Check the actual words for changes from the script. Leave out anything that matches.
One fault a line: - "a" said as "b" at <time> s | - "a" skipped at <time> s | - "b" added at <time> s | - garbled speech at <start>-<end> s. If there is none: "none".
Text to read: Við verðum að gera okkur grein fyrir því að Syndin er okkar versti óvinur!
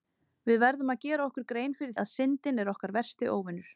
- "því" skipped at 1.9 s